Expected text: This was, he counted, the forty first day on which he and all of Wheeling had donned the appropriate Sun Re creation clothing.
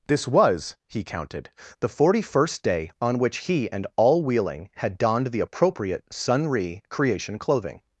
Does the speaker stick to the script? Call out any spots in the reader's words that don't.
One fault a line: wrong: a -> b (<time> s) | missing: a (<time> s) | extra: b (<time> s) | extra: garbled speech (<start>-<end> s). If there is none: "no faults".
missing: of (4.2 s)